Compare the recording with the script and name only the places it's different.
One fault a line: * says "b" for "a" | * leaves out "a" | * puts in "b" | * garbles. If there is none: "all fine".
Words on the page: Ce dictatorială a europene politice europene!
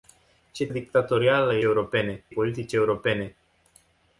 all fine